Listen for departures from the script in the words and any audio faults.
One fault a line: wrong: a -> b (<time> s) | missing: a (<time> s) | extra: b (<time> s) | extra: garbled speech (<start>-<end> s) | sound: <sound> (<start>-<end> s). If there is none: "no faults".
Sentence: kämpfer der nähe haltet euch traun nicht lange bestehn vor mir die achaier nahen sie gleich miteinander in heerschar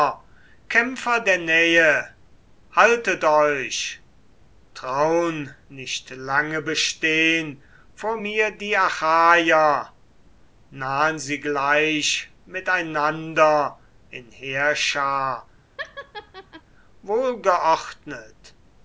sound: laugh (15.8-16.6 s)